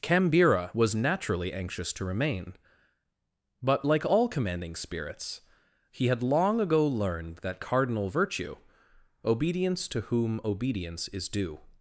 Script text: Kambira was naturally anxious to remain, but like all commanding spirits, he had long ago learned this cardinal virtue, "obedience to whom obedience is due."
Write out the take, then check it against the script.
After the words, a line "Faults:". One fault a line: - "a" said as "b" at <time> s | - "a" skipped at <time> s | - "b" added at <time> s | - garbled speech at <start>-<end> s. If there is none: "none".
Kambira was naturally anxious to remain, but like all commanding spirits, he had long ago learned that cardinal virtue, "obedience to whom obedience is due."
Faults:
- "this" said as "that" at 7.4 s